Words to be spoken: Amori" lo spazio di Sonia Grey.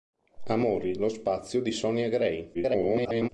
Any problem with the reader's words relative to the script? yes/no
yes